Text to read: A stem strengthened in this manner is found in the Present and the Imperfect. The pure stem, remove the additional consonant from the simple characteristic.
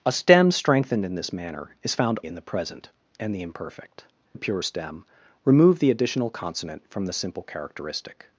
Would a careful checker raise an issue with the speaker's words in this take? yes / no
no